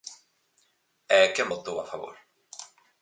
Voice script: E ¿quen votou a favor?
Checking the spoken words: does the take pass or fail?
pass